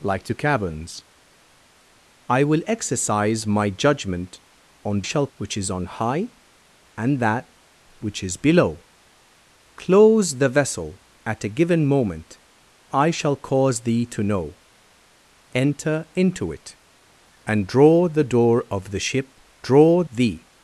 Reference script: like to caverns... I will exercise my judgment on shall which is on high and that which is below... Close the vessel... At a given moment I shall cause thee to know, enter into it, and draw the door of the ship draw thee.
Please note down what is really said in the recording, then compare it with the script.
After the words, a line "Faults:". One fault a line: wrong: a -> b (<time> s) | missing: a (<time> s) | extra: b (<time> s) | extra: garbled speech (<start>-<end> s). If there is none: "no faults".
like to caverns... I will exercise my judgment on shall which is on high and that which is below... Close the vessel... At a given moment I shall cause thee to know, enter into it, and draw the door of the ship draw thee.
Faults:
no faults